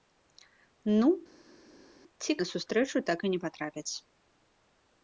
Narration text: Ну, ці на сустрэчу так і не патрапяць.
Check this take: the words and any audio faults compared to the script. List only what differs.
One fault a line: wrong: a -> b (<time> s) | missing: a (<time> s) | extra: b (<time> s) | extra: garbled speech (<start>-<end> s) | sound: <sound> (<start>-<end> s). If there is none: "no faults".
no faults